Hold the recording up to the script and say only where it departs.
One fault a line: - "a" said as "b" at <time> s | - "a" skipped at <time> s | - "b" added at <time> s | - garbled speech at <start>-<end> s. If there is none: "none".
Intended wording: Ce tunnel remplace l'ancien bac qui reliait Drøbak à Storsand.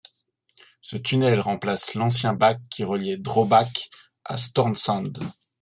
none